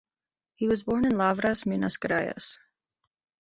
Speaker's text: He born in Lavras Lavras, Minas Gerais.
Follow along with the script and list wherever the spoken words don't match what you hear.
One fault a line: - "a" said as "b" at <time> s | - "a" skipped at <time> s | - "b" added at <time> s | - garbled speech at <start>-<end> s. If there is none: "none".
- "was" added at 0.7 s
- "Lavras" skipped at 1.7 s